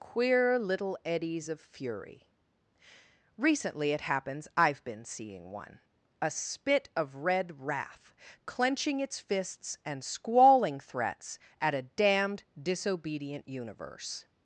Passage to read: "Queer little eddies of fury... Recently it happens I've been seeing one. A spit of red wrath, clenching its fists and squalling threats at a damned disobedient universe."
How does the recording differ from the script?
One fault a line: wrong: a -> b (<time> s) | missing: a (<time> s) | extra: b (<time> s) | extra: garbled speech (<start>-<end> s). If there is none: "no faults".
no faults